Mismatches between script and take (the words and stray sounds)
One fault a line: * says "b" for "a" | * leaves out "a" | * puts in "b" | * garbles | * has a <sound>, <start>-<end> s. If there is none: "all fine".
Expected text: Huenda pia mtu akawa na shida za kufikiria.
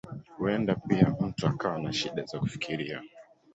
all fine